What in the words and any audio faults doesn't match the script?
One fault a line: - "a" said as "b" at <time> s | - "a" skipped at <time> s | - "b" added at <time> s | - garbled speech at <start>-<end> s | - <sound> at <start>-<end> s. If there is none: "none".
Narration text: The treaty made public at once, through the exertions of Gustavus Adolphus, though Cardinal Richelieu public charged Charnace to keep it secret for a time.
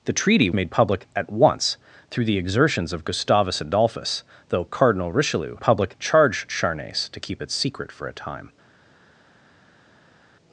none